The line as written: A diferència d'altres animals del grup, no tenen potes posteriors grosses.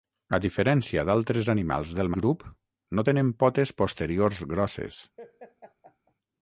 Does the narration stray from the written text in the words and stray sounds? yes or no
yes